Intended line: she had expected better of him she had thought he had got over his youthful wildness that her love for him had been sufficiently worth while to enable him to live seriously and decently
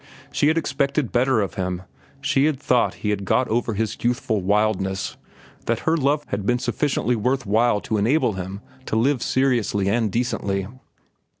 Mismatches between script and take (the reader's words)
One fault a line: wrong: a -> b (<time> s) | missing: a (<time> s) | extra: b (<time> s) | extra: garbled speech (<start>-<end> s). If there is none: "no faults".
missing: for him (6.2 s)